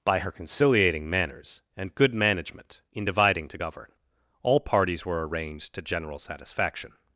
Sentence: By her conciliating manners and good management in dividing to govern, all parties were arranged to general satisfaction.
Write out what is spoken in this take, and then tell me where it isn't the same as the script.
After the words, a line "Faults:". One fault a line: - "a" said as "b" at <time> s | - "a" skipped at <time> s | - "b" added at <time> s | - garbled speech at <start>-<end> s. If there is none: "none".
By her conciliating manners and good management in dividing to govern, all parties were arranged to general satisfaction.
Faults:
none